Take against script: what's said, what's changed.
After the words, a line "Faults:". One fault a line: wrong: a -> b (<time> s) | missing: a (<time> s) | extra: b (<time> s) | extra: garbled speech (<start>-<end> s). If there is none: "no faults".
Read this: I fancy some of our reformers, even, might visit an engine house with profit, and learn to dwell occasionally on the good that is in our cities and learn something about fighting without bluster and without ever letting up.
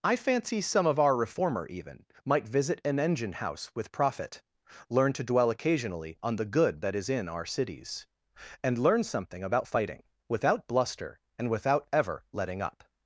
I fancy some of our reformer, even, might visit an engine house with profit, learn to dwell occasionally on the good that is in our cities and learn something about fighting without bluster and without ever letting up.
Faults:
wrong: reformers -> reformer (1.1 s)
missing: and (4.4 s)